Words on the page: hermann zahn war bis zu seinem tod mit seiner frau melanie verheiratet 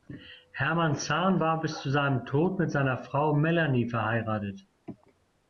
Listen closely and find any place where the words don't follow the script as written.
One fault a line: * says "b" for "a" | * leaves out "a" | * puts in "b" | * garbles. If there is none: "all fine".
all fine